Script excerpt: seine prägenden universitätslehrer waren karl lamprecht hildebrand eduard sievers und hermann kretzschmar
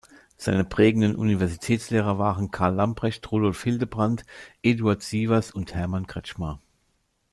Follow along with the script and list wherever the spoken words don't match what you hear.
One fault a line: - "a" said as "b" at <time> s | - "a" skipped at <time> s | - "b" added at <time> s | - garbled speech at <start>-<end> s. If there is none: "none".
- "rudolf" added at 3.3 s